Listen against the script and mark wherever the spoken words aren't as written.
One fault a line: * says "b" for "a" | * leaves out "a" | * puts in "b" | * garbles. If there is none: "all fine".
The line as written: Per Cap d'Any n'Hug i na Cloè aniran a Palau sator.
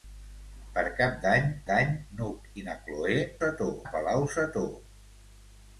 * puts in "d'Any"
* says "sator" for "aniran"